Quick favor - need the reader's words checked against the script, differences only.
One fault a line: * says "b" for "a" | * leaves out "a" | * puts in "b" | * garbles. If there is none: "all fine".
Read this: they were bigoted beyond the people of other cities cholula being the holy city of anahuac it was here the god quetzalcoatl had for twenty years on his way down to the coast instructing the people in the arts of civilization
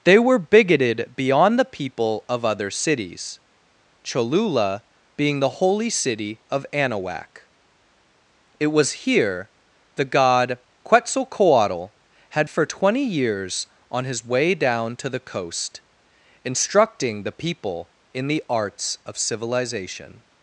all fine